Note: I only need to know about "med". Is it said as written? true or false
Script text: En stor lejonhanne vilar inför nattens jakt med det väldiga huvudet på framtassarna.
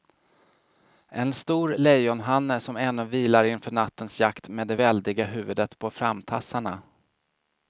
true